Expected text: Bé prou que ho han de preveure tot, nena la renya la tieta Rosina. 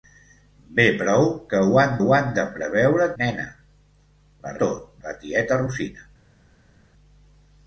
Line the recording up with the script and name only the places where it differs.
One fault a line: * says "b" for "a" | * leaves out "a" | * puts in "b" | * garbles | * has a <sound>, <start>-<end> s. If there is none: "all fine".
* puts in "ho han"
* leaves out "tot"
* says "tot" for "renya"